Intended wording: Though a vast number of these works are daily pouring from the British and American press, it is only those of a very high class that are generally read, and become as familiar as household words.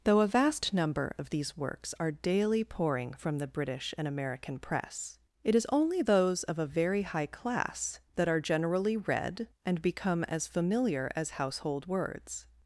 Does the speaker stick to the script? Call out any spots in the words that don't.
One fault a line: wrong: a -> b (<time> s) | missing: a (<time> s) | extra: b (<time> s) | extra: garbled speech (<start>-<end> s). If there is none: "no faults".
no faults